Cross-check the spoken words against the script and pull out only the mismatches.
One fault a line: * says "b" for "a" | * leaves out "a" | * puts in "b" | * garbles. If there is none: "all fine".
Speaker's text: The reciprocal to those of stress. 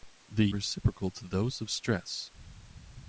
all fine